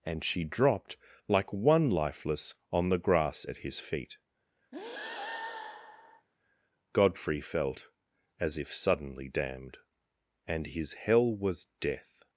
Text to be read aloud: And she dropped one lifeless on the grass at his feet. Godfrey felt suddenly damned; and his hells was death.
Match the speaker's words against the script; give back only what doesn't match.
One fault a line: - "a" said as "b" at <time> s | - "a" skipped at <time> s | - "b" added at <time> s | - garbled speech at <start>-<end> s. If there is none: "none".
- "like" added at 1.3 s
- "as if" added at 8.4 s
- "hells" said as "hell" at 10.9 s